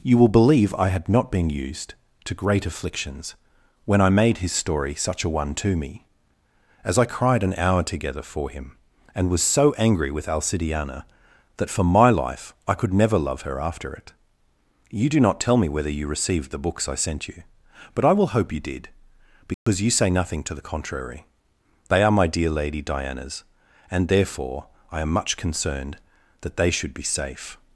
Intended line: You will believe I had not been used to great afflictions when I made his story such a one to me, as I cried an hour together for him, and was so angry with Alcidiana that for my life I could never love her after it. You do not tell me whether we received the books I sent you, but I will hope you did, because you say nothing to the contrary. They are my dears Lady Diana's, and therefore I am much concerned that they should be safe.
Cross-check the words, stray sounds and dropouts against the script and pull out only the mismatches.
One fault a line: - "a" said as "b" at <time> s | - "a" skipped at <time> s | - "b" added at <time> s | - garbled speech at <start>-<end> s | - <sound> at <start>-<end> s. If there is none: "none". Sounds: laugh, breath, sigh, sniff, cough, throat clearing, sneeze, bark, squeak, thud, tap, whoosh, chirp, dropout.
- "we" said as "you" at 15.9 s
- dropout at 19.5-19.7 s
- "dears" said as "dear" at 22.2 s